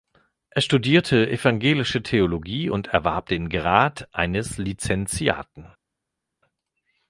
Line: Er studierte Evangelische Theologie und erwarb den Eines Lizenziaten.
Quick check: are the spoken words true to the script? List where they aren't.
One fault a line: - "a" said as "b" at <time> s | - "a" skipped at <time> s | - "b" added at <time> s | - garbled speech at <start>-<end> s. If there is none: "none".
- "Grad" added at 3.5 s